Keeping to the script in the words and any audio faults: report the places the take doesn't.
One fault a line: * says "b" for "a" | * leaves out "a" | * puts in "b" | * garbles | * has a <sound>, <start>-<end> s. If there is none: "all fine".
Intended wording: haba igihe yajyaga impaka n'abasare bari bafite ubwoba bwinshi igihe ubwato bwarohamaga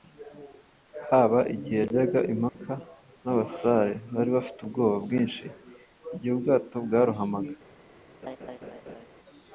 * has a dropout, 2.5-2.6 s
* has a laugh, 8.2-9.1 s